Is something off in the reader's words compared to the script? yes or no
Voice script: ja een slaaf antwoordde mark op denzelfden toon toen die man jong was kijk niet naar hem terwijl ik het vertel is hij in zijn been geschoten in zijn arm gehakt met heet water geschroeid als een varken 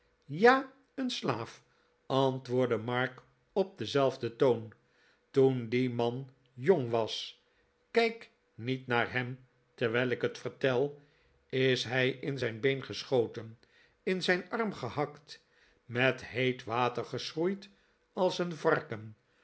no